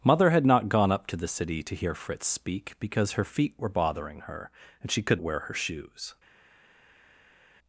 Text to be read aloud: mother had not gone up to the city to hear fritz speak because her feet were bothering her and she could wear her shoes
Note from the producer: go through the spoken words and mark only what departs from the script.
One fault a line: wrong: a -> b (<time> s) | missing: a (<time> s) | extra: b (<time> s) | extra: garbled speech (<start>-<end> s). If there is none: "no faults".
no faults